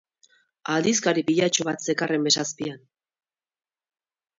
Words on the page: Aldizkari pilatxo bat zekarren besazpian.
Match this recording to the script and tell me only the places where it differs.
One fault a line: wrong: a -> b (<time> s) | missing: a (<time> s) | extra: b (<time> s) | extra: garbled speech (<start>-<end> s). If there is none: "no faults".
no faults